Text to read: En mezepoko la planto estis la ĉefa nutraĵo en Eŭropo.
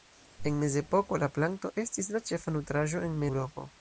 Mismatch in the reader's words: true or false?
false